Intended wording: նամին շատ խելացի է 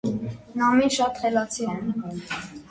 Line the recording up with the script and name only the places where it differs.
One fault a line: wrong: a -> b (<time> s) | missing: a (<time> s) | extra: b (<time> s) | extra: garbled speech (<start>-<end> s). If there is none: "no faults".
no faults